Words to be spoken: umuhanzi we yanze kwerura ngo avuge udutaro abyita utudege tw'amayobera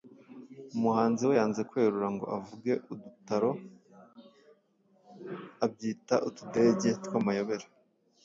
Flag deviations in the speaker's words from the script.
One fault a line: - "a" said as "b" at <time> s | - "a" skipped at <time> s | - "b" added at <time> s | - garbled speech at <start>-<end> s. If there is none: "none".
none